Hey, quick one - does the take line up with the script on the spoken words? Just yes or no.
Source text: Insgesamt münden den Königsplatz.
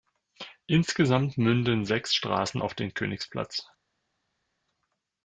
no